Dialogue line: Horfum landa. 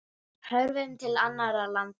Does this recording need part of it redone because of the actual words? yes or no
yes